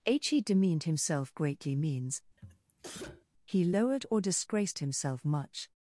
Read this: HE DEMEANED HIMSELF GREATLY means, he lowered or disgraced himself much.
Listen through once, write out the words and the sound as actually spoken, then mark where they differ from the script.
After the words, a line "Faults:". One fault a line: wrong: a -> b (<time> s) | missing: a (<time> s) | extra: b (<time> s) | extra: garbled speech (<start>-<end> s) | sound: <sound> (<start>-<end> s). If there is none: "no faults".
h HE DEMEANED HIMSELF GREATLY means, he lowered or disgraced himself much.
Faults:
extra: h (0.1 s)
sound: sneeze (2.4-3.3 s)